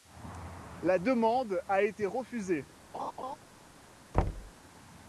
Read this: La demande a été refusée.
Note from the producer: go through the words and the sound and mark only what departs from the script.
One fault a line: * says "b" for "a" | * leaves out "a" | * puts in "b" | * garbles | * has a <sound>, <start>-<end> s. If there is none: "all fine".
* has a laugh, 2.9-3.4 s
* has a thud, 4.1-4.5 s